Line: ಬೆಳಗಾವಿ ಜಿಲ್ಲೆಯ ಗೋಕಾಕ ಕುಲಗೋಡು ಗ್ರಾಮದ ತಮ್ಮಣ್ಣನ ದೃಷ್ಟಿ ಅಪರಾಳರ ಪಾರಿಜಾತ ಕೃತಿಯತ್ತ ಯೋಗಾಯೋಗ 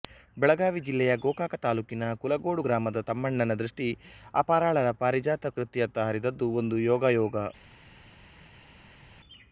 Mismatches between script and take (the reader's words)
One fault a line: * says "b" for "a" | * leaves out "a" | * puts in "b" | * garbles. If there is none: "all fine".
* puts in "ತಾಲೂಕಿನ"
* puts in "ಹರಿದದ್ದು ಒಂದು"